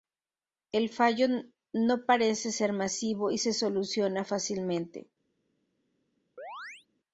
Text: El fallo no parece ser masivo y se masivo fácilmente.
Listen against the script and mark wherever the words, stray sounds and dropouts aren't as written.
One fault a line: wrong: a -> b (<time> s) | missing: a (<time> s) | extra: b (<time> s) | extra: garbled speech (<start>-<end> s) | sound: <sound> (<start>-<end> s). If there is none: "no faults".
wrong: masivo -> soluciona (3.5 s)
sound: chirp (6.4-6.9 s)